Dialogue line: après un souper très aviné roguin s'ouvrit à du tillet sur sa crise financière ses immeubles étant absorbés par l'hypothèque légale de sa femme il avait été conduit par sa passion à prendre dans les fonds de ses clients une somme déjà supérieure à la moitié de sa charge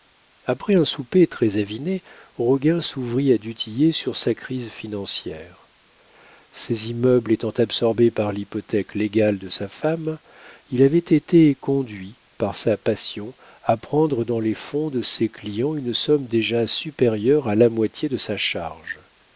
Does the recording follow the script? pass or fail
pass